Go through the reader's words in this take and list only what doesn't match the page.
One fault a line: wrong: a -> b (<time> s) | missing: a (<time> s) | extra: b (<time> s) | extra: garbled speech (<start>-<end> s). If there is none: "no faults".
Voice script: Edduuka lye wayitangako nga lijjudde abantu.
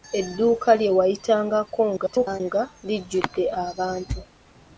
extra: garbled speech (2.0-2.4 s)